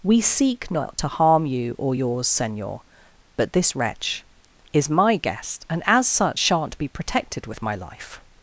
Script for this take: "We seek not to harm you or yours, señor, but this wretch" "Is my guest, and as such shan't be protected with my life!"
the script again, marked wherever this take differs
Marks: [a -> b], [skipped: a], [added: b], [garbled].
"We seek not to harm you or yours, señor, but this wretch" "Is my guest, and as such shan't be protected with my life!"